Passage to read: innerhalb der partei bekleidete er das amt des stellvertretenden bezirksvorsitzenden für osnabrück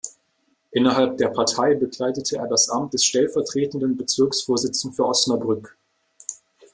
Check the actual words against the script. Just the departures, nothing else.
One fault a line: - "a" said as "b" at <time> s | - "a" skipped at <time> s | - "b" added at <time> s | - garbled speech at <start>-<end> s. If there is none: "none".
none